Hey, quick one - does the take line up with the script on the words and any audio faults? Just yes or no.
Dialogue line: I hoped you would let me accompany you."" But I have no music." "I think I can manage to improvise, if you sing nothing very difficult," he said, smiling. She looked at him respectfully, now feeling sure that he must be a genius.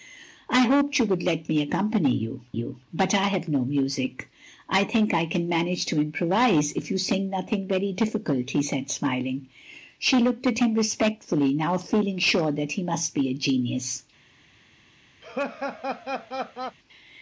no